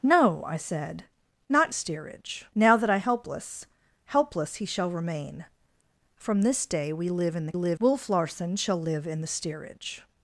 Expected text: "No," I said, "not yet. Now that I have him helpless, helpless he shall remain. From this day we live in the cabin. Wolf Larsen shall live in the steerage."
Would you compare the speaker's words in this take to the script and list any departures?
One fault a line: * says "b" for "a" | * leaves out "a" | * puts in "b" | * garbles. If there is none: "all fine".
* says "steerage" for "yet"
* leaves out "have him"
* says "live" for "cabin"